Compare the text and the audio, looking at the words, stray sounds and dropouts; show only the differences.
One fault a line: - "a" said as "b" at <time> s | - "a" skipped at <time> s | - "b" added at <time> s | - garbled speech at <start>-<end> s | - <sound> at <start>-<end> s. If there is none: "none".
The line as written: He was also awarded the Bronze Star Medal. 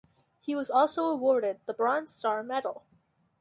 none